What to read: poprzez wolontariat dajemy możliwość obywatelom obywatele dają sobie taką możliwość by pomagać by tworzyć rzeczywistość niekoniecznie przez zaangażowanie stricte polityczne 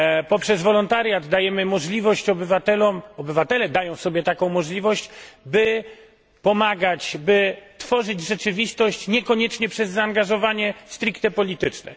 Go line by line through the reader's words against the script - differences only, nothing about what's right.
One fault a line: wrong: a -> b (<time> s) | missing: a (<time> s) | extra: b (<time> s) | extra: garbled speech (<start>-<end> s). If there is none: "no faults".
no faults